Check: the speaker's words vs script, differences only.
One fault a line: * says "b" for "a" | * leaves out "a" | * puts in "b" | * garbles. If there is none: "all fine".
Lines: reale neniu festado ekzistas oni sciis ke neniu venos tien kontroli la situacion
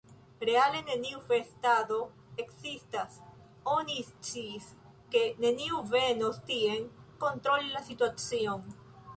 all fine